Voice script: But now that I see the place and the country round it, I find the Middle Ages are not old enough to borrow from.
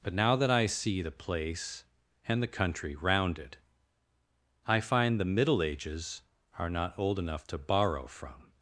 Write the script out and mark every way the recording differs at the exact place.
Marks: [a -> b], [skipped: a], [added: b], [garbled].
But now that I see the place and the country round it, I find the Middle Ages are not old enough to borrow from.